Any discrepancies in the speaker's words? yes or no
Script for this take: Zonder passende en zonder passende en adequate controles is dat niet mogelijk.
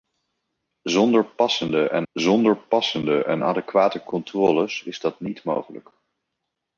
no